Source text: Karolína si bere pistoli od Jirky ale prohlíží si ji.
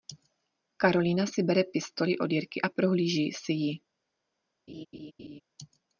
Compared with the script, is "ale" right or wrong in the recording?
wrong